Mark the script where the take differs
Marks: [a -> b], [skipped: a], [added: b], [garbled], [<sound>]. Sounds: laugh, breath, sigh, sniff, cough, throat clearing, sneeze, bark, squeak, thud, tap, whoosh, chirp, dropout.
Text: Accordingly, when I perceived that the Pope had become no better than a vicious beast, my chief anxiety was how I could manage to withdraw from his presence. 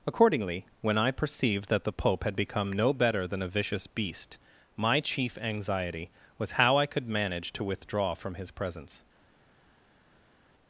Accordingly, when I perceived that the Pope had become no better than a vicious beast, my chief anxiety was how I could manage to withdraw from his presence.